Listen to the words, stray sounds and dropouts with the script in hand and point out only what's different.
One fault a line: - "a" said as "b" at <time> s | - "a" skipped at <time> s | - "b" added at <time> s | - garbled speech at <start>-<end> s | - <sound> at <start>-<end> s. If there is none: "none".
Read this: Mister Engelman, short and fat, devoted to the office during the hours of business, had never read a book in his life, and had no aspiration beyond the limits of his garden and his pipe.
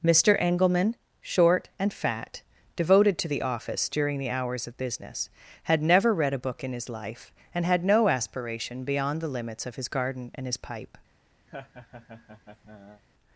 - laugh at 11.5-13.0 s